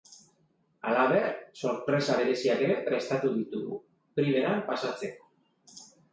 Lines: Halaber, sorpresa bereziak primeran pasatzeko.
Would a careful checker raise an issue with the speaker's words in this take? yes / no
yes